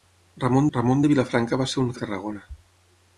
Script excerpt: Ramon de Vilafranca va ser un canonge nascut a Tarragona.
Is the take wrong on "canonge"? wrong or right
wrong